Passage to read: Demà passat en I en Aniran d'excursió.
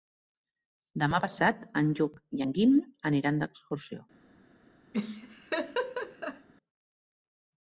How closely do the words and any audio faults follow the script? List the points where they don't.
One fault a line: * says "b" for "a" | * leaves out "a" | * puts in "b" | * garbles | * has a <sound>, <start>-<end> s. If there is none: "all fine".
* puts in "Lluc"
* puts in "Guim"
* has a laugh, 4.9-6.5 s